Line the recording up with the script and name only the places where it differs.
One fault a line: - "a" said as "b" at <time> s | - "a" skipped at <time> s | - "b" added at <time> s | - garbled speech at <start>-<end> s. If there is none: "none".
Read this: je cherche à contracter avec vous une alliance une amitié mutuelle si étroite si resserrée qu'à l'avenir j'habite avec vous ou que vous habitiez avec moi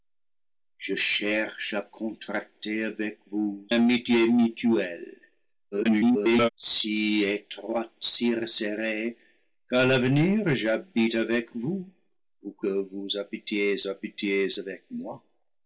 - "une alliance une" skipped at 3.7 s
- garbled speech at 5.7-6.5 s
- "habitiez" added at 13.9 s